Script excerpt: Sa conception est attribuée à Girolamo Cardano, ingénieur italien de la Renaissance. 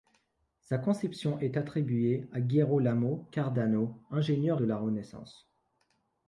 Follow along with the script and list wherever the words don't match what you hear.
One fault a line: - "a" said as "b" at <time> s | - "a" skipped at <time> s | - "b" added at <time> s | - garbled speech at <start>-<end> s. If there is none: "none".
- "italien" skipped at 4.6 s